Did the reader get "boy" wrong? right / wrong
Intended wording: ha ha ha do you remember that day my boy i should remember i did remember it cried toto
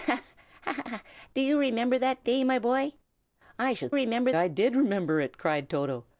right